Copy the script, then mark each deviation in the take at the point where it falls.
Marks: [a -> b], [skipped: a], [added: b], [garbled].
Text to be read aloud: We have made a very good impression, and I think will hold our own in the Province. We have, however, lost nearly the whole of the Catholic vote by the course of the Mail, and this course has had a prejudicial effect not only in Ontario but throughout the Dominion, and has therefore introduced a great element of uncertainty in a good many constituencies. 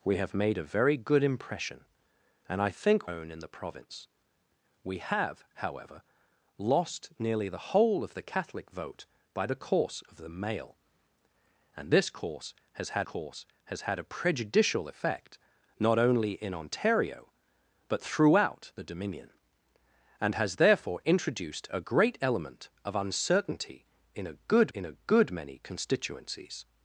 We have made a very good impression, and I think [skipped: will hold our] own in the Province. We have, however, lost nearly the whole of the Catholic vote by the course of the Mail, and this course has had [added: course has had] a prejudicial effect not only in Ontario but throughout the Dominion, and has therefore introduced a great element of uncertainty in a good [added: in a good] many constituencies.